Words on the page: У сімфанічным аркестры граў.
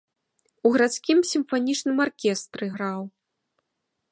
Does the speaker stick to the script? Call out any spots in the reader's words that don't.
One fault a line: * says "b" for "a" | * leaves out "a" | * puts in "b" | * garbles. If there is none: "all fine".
* puts in "гарадскім"